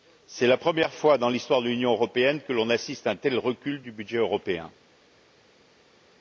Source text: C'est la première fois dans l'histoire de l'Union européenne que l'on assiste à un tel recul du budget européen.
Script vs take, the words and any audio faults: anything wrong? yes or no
no